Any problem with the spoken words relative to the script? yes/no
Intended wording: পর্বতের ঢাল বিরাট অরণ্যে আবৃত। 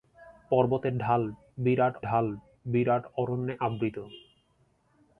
yes